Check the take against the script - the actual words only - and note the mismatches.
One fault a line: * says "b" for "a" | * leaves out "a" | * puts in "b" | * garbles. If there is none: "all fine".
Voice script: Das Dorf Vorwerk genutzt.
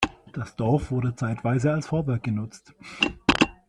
* puts in "wurde zeitweise als"